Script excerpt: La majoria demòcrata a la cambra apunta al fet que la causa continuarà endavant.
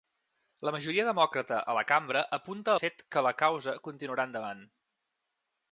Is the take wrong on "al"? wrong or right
wrong